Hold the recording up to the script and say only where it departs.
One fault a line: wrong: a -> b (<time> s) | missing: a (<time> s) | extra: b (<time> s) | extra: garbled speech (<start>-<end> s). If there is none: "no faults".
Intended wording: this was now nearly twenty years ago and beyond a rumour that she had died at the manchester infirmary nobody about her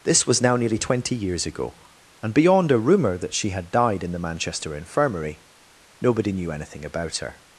wrong: at -> in (4.0 s)
extra: knew anything (6.3 s)